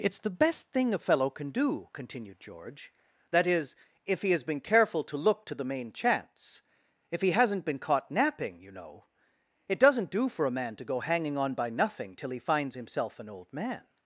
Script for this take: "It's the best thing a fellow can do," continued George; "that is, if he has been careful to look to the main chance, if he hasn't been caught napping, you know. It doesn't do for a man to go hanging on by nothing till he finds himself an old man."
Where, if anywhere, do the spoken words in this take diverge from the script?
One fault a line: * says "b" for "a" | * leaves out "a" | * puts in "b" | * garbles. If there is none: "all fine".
all fine